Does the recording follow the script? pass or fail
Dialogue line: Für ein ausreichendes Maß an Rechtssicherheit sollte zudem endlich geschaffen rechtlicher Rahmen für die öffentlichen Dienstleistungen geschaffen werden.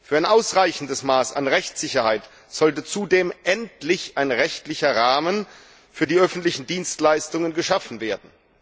fail